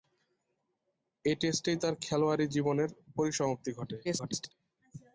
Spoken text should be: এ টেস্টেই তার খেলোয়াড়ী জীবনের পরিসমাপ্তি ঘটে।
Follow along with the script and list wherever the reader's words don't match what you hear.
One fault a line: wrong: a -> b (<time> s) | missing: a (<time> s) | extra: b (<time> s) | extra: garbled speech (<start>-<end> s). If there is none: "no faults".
extra: garbled speech (4.0-4.5 s)